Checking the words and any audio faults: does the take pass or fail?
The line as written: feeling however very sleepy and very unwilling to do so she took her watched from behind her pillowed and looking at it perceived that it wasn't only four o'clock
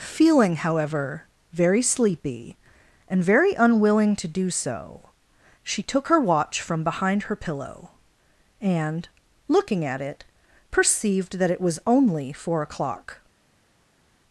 fail